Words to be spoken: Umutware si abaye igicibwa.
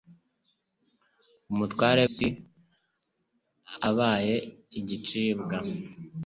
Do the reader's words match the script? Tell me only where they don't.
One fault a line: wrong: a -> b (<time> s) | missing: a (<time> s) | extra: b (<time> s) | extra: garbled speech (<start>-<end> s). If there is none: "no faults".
no faults